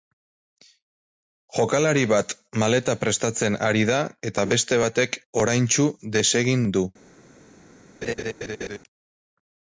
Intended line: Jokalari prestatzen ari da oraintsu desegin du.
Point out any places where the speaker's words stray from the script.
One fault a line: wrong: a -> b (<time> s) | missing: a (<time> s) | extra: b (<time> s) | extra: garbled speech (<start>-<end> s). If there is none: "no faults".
extra: bat maleta (2.1 s)
extra: eta beste batek (4.3 s)